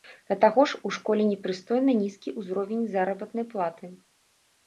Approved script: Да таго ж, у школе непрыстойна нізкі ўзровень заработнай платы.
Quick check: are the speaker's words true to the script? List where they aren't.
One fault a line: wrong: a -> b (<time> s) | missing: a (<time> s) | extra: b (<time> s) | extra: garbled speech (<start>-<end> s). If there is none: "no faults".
no faults